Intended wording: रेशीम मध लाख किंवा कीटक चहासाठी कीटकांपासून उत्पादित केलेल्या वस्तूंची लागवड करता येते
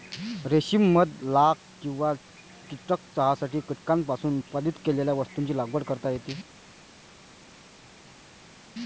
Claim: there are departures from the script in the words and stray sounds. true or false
false